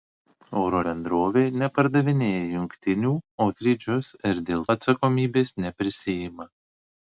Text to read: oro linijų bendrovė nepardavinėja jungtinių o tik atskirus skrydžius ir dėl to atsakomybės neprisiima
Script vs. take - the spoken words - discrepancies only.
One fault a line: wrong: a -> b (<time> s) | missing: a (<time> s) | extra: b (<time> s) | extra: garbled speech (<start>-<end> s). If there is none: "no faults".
missing: linijų (0.8 s)
missing: tik atskirus (3.5 s)
missing: to (4.7 s)